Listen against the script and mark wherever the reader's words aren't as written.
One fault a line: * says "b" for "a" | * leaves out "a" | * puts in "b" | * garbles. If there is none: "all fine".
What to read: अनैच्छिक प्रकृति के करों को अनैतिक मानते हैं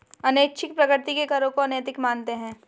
all fine